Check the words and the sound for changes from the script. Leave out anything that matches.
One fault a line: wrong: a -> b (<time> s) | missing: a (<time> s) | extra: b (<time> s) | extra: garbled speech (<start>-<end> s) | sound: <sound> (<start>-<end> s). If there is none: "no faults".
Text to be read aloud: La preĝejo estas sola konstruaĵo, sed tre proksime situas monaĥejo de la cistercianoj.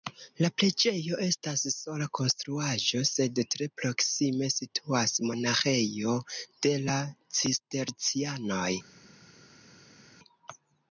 no faults